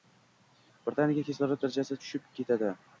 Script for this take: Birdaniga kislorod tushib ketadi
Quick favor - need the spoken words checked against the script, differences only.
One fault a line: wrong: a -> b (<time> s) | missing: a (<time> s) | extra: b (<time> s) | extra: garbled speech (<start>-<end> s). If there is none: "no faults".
extra: darajasi (1.7 s)